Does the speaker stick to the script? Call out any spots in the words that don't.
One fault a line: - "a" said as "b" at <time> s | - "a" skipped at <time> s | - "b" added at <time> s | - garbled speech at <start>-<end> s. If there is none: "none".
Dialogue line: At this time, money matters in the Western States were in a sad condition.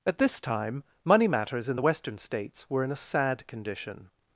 none